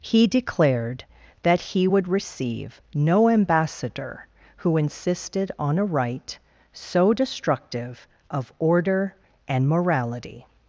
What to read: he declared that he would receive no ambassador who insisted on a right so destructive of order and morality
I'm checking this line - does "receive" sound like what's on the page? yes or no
yes